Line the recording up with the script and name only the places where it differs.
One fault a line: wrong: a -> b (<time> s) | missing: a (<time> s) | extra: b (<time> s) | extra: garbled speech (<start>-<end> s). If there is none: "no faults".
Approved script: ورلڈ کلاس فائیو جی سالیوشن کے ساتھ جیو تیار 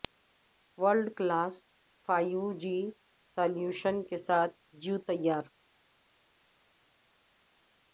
no faults